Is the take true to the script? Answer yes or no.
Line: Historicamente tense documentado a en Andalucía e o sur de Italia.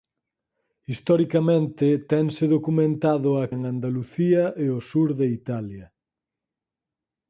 yes